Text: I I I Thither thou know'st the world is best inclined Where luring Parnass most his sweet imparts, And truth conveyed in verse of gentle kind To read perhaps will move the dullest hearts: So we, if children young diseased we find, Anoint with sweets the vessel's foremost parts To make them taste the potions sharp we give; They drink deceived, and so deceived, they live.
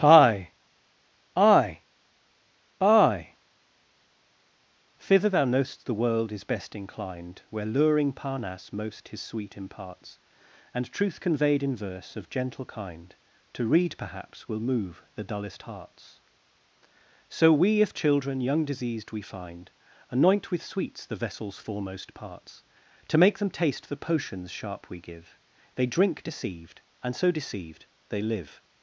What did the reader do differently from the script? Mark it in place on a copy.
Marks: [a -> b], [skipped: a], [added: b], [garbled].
I I I Thither thou know'st the world is best inclined Where luring Parnass most his sweet imparts, And truth conveyed in verse of gentle kind To read perhaps will move the dullest hearts: So we, if children young diseased we find, Anoint with sweets the vessel's foremost parts To make them taste the potions sharp we give; They drink deceived, and so deceived, they live.